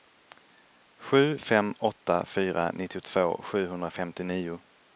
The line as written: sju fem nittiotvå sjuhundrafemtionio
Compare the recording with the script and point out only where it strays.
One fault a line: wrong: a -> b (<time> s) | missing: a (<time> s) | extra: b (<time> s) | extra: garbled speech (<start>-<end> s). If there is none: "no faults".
extra: åtta fyra (1.8 s)